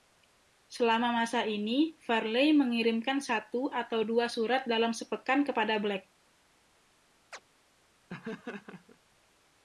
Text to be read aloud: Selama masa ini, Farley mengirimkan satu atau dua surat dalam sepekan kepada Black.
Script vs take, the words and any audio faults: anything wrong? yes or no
yes